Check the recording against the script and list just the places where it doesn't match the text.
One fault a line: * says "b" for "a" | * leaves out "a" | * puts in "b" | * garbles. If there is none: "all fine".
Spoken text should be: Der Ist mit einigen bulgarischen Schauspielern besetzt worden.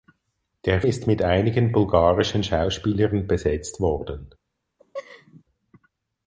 all fine